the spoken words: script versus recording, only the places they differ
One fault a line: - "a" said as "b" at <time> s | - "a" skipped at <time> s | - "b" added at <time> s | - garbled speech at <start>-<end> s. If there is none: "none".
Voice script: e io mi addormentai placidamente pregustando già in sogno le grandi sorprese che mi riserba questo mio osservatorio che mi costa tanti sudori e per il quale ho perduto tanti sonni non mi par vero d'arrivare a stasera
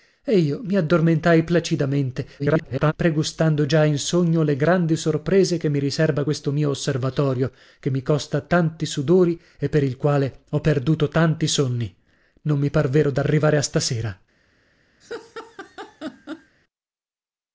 - garbled speech at 2.4-2.9 s